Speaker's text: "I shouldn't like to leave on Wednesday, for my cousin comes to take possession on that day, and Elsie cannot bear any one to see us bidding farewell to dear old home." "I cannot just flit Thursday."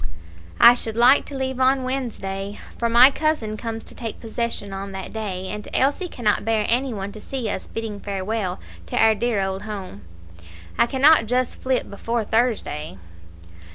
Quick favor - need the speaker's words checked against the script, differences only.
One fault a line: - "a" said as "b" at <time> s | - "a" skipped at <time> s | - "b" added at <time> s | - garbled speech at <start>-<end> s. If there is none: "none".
- "shouldn't" said as "should" at 0.7 s
- "our" added at 9.0 s
- "before" added at 11.9 s